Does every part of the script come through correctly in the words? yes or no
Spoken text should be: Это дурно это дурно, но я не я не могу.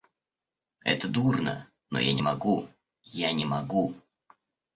no